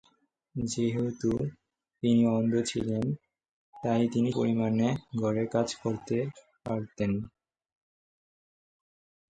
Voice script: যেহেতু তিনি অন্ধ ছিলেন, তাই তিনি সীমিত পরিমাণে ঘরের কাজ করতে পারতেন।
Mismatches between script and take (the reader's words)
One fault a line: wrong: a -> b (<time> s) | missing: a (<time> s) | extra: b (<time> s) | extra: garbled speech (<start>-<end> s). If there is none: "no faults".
missing: সীমিত (4.3 s)